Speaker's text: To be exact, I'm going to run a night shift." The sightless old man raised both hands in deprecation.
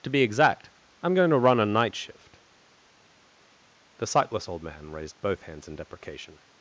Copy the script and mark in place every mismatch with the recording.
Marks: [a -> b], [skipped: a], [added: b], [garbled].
To be exact, I'm going to run a night shift." The sightless old man raised both hands in deprecation.